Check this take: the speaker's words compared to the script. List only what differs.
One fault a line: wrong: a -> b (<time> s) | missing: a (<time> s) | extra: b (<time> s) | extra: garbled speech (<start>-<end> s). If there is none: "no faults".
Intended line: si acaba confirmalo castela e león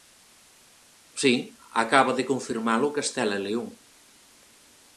extra: de (2.2 s)